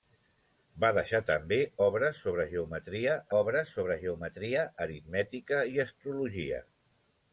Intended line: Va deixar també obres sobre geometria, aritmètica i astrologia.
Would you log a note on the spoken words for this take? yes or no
yes